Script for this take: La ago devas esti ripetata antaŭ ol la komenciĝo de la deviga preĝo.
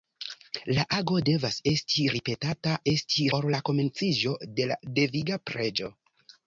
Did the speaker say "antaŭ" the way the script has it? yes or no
no